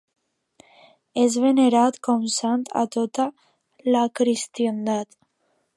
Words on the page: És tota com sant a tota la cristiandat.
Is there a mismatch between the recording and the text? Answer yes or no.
yes